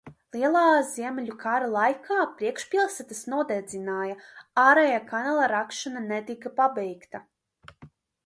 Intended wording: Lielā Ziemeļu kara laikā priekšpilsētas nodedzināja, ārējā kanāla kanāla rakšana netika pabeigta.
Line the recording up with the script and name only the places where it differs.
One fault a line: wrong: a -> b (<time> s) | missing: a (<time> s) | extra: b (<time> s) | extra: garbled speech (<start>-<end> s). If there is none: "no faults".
missing: kanāla (5.5 s)